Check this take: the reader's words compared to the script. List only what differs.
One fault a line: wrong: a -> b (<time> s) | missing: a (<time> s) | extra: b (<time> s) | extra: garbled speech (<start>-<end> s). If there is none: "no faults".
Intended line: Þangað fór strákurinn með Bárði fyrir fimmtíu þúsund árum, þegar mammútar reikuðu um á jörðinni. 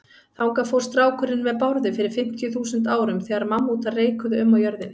no faults